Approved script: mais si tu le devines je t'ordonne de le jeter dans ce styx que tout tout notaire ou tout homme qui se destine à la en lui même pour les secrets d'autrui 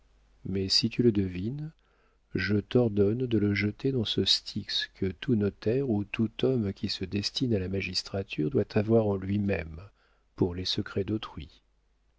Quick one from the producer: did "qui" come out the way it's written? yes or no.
yes